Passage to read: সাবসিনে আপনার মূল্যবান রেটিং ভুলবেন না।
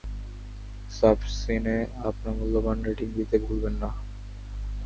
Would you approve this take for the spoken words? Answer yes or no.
no